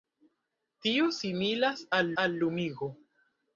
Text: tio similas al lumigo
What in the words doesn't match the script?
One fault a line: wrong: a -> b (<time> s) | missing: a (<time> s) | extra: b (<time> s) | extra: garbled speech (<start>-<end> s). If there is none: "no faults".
extra: al (2.2 s)